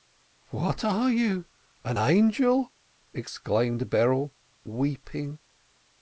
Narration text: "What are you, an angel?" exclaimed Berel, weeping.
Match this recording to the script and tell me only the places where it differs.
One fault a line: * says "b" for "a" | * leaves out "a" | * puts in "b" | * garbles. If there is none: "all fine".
all fine